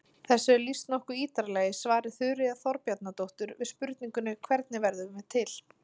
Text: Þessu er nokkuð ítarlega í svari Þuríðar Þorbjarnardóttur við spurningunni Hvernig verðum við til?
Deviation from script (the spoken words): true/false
true